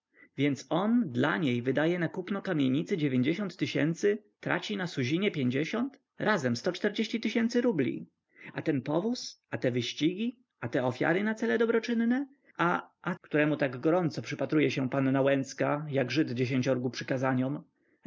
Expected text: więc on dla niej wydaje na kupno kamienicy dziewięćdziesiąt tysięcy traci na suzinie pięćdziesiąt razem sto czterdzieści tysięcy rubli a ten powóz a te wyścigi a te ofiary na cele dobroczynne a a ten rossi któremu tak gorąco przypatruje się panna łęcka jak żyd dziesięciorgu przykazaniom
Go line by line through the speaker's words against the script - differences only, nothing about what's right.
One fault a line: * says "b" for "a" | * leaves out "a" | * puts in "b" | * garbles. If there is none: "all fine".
* leaves out "ten rossi"